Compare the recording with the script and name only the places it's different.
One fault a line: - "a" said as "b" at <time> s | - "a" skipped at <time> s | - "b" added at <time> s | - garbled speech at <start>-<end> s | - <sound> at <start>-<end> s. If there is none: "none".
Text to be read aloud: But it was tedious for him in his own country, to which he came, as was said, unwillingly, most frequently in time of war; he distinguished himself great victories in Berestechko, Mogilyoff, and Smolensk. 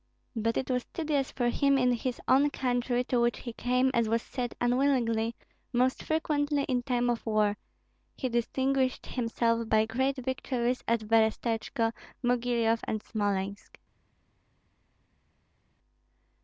- "by" added at 9.7 s
- "in" said as "at" at 10.9 s